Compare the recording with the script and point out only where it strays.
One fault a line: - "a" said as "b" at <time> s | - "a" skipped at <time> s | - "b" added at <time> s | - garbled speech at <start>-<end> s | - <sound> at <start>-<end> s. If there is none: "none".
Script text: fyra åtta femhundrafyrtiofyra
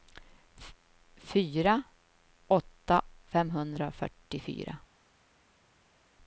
none